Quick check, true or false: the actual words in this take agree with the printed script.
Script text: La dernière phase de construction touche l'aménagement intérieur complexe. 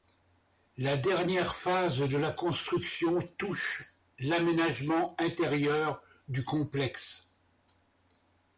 false